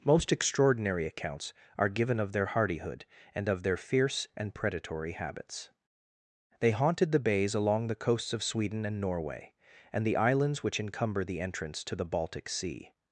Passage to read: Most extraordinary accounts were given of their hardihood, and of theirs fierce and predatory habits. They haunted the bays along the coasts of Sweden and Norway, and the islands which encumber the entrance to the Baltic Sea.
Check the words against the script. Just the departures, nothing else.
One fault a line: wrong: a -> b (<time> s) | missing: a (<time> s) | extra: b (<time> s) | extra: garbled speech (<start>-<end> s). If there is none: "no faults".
wrong: were -> are (1.8 s)
wrong: theirs -> their (3.6 s)